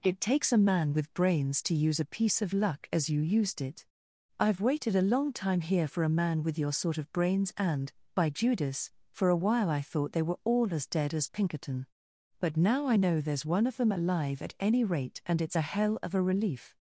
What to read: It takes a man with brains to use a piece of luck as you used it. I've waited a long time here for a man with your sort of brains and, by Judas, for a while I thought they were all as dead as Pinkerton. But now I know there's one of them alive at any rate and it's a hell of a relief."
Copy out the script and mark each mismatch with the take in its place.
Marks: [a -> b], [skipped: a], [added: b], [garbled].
It takes a man with brains to use a piece of luck as you used it. I've waited a long time here for a man with your sort of brains and, by Judas, for a while I thought they were all as dead as Pinkerton. But now I know there's one of them alive at any rate and it's a hell of a relief."